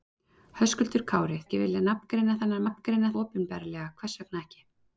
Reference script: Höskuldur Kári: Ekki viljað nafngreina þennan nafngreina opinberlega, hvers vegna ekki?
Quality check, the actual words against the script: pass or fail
pass